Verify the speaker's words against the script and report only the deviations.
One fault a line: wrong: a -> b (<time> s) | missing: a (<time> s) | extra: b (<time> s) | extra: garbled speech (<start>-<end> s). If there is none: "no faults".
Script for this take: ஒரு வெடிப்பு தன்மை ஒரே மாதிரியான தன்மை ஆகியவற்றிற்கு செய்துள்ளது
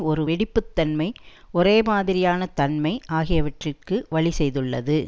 extra: வழி (4.1 s)